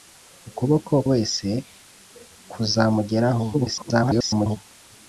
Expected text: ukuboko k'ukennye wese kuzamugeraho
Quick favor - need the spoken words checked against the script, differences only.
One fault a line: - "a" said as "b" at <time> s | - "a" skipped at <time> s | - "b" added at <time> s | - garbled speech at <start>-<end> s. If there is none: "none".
- "k'ukennye" skipped at 0.9 s
- garbled speech at 3.5-4.6 s